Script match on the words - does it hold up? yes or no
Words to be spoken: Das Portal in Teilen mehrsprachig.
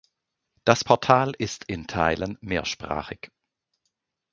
no